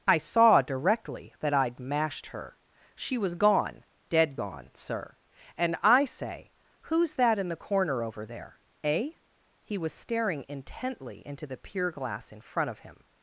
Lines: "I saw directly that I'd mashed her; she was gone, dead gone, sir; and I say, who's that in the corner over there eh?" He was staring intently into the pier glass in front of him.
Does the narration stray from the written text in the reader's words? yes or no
no